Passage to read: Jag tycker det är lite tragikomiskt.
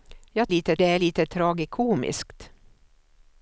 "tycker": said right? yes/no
no